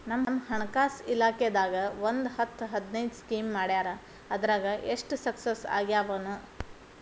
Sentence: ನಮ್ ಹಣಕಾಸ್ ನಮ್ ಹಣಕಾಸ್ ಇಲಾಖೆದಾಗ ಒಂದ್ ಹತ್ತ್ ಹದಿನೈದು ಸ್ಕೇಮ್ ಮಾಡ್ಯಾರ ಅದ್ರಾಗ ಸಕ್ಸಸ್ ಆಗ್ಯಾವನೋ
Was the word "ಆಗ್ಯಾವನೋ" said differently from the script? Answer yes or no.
no